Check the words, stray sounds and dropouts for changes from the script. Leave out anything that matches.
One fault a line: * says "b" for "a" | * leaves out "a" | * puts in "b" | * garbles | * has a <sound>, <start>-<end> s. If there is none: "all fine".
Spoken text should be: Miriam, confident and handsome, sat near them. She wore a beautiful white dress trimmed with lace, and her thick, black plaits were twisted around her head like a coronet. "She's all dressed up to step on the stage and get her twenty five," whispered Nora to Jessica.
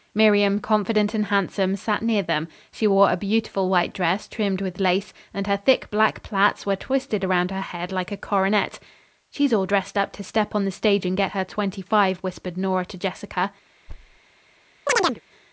* has a thud, 13.9-14.2 s
* has a chirp, 14.9-15.2 s